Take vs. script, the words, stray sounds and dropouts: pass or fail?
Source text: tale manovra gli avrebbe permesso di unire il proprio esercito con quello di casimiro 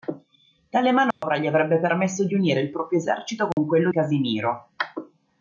fail